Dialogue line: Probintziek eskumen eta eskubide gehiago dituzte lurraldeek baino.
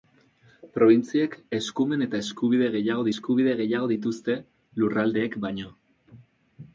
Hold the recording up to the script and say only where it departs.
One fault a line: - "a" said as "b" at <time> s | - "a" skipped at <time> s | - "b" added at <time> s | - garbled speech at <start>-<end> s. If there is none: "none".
- "eskubide gehiago" added at 3.1 s